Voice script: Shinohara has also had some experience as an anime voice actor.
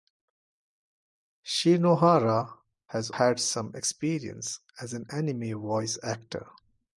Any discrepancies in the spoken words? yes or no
yes